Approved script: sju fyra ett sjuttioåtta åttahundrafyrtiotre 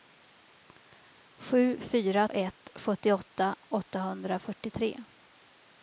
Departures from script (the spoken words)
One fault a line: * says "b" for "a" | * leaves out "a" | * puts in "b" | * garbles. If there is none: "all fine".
all fine